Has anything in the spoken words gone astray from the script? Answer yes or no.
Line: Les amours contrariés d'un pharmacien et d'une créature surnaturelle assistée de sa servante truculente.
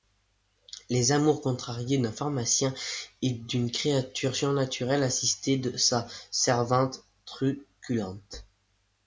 no